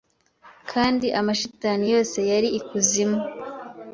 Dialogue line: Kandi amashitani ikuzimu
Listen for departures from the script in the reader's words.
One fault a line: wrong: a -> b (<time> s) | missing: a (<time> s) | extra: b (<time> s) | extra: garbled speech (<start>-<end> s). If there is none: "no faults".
extra: yose yari (1.9 s)